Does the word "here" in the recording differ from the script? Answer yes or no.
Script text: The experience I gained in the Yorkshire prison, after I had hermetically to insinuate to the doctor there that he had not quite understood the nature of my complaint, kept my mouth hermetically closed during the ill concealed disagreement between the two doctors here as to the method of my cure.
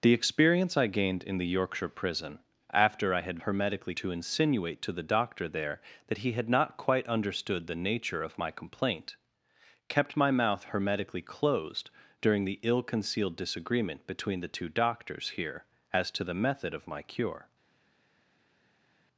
no